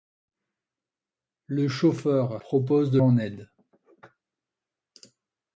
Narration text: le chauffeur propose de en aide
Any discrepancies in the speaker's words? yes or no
no